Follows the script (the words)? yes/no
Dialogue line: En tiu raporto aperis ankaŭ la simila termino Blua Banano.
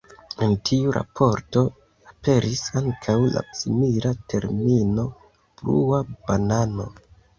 yes